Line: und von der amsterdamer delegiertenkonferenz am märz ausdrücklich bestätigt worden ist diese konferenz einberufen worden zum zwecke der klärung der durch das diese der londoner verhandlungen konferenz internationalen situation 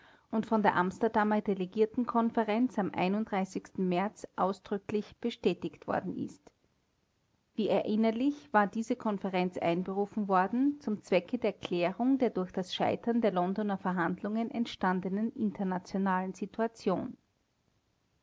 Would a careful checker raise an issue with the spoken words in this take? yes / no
yes